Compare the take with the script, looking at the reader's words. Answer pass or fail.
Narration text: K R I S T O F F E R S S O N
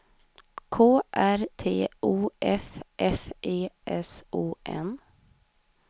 fail